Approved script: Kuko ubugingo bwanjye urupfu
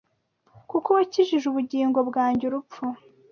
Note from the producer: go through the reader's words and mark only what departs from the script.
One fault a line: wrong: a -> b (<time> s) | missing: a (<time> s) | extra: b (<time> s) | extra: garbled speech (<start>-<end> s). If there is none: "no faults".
extra: wakijije (1.0 s)